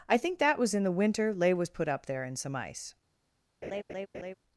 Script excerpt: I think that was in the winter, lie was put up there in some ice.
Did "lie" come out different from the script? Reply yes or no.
yes